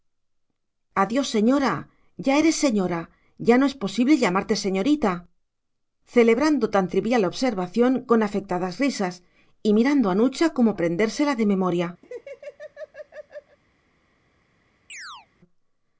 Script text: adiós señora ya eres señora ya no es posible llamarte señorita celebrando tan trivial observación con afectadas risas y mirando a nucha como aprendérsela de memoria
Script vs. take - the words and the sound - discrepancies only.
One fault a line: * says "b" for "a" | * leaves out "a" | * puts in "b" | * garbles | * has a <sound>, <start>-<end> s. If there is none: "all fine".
* has a laugh, 12.0-13.6 s
* has a chirp, 14.9-15.3 s